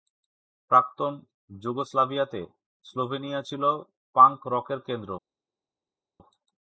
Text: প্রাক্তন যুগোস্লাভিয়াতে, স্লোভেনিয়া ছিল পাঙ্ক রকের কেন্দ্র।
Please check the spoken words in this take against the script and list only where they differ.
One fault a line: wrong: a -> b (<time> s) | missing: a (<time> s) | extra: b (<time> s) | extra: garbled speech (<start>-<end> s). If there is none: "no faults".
no faults